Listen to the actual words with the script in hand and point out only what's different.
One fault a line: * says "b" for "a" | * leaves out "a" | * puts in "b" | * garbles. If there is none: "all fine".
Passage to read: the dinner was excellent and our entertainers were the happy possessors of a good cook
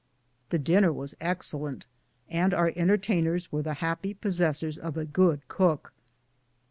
all fine